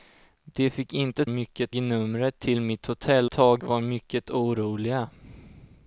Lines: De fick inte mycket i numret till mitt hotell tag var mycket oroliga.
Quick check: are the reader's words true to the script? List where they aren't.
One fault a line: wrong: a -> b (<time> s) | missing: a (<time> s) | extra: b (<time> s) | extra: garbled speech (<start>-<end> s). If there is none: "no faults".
no faults